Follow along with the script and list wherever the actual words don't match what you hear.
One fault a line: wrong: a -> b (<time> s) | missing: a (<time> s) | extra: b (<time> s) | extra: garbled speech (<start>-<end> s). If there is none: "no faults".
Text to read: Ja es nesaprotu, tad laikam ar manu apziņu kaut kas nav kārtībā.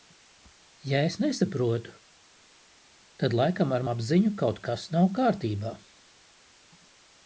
missing: manu (3.9 s)